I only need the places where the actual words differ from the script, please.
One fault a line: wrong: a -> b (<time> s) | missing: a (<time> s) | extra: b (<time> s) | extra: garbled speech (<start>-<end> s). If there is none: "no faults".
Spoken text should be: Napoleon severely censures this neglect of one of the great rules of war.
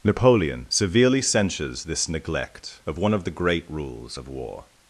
no faults